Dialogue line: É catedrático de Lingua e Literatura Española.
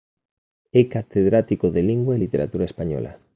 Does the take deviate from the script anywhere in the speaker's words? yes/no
no